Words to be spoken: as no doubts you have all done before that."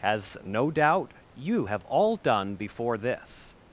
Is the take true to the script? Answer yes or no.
no